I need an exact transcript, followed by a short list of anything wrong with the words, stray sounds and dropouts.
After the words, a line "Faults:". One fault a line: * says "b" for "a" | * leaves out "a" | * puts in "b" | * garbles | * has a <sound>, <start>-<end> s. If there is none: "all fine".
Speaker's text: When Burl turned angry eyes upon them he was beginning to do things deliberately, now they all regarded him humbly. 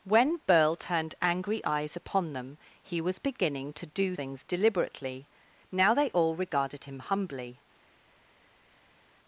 When Burl turned angry eyes upon them he was beginning to do things deliberately, now they all regarded him humbly.
Faults:
all fine